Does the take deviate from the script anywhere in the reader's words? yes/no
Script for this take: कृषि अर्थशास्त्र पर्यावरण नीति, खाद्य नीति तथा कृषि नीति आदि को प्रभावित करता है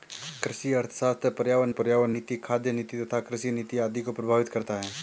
yes